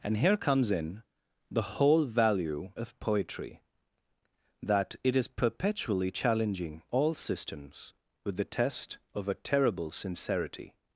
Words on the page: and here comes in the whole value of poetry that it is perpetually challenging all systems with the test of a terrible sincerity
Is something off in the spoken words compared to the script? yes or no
no